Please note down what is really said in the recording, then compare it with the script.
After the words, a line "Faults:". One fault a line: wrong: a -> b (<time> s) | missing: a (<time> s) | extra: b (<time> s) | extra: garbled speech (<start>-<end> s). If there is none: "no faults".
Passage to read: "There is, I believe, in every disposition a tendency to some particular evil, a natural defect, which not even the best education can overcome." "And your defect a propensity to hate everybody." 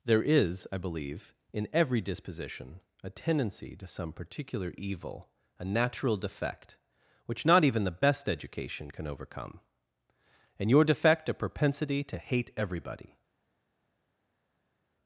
"There is, I believe, in every disposition a tendency to some particular evil, a natural defect, which not even the best education can overcome." "And your defect a propensity to hate everybody."
Faults:
no faults